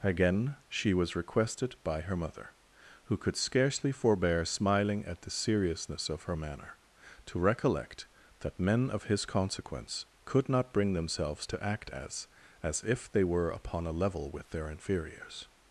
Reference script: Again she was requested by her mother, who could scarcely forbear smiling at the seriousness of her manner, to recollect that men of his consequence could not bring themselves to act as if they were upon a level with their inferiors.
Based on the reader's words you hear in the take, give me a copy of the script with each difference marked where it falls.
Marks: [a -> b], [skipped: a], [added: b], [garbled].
Again she was requested by her mother, who could scarcely forbear smiling at the seriousness of her manner, to recollect that men of his consequence could not bring themselves to act as [added: as] if they were upon a level with their inferiors.